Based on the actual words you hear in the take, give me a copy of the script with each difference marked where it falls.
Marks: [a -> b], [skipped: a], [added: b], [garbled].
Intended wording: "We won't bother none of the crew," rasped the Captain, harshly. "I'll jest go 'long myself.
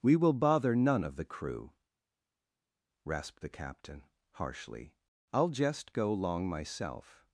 "We [won't -> will] bother none of the crew," rasped the Captain, harshly. "I'll jest go 'long myself.